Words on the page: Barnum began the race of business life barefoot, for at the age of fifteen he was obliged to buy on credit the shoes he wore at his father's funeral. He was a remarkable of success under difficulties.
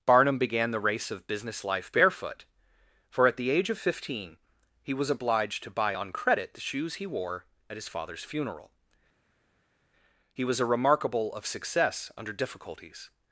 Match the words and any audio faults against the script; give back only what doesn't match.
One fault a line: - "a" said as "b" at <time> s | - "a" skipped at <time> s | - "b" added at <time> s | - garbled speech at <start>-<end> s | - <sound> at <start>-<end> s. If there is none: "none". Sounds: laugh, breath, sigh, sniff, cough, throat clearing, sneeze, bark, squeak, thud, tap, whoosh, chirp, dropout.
none